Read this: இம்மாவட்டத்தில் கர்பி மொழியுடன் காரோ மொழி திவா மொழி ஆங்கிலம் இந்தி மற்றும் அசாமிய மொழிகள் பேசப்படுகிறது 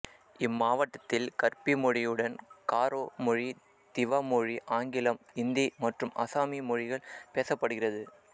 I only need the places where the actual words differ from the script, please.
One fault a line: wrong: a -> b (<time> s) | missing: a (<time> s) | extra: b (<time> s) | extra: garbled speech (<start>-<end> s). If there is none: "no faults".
no faults